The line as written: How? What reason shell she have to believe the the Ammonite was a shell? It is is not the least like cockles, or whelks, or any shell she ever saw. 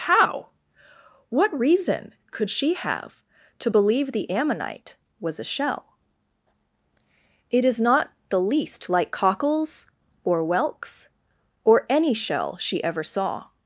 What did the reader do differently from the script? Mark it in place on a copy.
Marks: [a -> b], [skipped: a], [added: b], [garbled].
How? What reason [shell -> could] she have to believe the [skipped: the] Ammonite was a shell? It is [skipped: is] not the least like cockles, or whelks, or any shell she ever saw.